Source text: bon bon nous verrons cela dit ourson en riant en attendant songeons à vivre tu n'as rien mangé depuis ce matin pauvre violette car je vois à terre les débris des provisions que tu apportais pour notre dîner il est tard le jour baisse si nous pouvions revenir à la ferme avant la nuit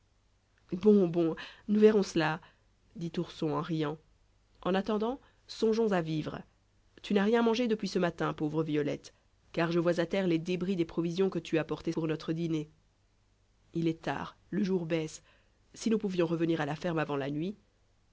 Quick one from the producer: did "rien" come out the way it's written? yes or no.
yes